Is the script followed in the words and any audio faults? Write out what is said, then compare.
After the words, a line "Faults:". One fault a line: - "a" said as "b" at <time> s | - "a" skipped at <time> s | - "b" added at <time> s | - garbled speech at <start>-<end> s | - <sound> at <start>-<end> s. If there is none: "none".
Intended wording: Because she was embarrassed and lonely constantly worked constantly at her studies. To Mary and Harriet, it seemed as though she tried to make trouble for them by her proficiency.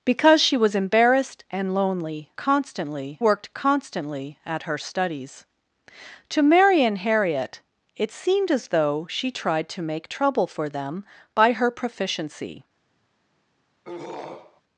Because she was embarrassed and lonely constantly worked constantly at her studies. To Mary and Harriet, it seemed as though she tried to make trouble for them by her proficiency.
Faults:
- throat clearing at 13.8-14.6 s